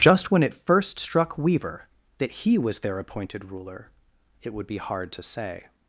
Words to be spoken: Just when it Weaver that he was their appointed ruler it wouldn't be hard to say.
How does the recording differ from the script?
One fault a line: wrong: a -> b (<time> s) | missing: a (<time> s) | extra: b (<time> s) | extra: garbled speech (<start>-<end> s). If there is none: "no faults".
extra: first struck (0.6 s)
wrong: wouldn't -> would (4.5 s)